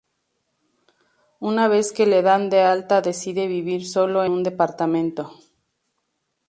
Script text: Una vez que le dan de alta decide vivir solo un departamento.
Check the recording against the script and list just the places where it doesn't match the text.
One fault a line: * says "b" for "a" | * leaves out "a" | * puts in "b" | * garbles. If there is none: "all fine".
all fine